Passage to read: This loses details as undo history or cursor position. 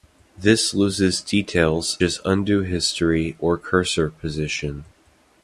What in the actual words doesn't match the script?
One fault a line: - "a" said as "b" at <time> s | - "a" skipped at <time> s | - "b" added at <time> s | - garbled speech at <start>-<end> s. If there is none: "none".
none